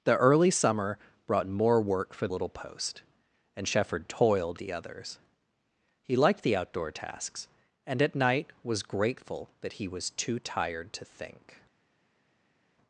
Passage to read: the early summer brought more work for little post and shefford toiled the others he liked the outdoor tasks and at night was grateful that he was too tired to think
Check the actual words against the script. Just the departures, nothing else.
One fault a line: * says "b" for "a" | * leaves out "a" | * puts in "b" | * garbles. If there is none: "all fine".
all fine